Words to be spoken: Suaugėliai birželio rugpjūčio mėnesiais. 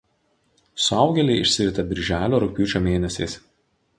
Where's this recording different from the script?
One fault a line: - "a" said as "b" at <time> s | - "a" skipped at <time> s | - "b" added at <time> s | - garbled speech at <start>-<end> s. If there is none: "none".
- "išsirita" added at 1.4 s